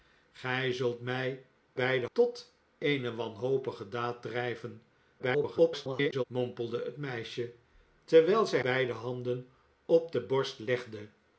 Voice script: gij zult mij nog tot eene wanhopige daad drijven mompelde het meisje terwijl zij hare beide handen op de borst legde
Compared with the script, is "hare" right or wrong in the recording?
wrong